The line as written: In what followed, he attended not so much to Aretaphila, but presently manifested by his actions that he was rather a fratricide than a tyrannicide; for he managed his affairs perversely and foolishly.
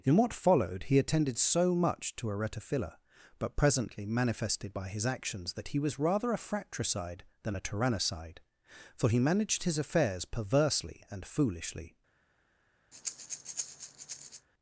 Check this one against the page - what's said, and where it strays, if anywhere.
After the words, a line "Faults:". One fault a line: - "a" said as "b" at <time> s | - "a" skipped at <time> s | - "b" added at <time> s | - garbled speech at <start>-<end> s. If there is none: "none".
In what followed, he attended so much to Aretaphila, but presently manifested by his actions that he was rather a fratricide than a tyrannicide; for he managed his affairs perversely and foolishly.
Faults:
- "not" skipped at 1.4 s